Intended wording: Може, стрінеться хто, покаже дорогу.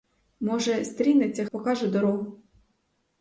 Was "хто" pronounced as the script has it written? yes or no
no